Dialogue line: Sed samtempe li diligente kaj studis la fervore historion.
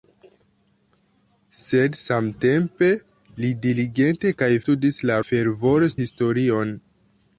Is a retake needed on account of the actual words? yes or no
no